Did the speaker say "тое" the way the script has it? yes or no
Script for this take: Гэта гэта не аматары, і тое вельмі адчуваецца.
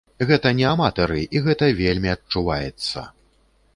no